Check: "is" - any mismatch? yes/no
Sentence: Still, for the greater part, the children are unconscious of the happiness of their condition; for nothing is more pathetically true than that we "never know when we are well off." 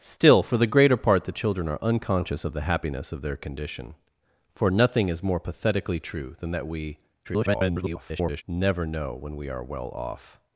no